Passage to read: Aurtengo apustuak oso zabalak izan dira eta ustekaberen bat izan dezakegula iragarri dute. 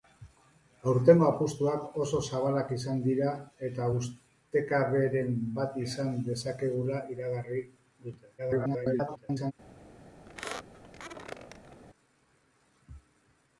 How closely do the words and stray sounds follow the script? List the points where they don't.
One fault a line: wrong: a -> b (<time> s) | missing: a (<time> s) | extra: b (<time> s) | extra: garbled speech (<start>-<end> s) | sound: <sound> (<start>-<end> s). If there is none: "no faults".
extra: garbled speech (8.4-9.5 s)
sound: squeak (10.3-11.8 s)